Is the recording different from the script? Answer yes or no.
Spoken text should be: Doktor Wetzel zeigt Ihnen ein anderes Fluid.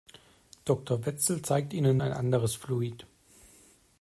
no